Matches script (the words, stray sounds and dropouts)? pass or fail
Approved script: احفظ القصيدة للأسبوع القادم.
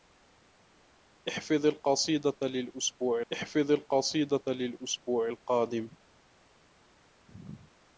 fail